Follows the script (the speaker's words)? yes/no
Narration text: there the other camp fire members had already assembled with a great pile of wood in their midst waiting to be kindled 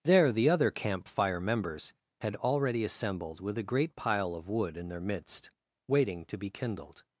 yes